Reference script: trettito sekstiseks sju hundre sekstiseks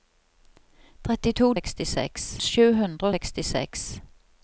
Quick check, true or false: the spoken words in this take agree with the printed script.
true